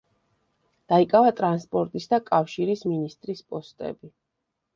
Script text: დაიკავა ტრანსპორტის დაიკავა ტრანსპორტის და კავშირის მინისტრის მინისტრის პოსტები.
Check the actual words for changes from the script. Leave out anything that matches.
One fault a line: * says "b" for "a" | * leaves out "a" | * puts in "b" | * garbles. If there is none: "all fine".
* leaves out "დაიკავა ტრანსპორტის"
* leaves out "მინისტრის"